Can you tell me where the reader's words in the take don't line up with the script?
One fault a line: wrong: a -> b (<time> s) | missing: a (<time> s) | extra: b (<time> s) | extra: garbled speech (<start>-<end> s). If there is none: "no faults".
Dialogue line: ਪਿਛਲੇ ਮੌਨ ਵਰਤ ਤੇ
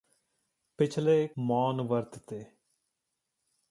no faults